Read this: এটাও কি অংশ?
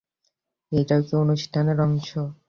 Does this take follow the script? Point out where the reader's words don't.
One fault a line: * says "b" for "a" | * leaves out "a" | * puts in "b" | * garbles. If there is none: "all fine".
* puts in "অনুষ্ঠানের"